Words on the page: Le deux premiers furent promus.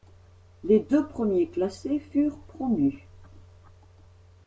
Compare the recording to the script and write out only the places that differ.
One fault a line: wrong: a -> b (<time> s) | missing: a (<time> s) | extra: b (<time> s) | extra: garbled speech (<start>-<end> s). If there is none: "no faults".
wrong: Le -> Les (0.6 s)
extra: classés (1.5 s)